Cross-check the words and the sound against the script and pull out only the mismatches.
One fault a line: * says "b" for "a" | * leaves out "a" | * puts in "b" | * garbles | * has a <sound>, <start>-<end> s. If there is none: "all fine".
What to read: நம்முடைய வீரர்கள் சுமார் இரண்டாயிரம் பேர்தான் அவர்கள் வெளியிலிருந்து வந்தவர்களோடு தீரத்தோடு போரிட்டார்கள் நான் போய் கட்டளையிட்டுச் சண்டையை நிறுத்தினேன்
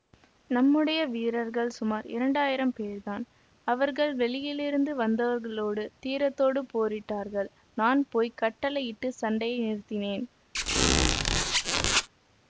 * has a squeak, 10.5-12.1 s